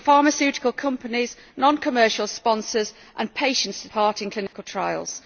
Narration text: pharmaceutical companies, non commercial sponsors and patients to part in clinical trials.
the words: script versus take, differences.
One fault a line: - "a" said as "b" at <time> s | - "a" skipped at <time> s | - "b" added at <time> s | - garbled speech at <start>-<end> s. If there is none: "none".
none